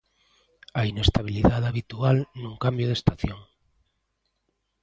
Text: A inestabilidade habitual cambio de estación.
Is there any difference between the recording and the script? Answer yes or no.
yes